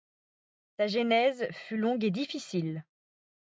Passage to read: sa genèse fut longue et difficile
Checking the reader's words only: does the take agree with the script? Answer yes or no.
yes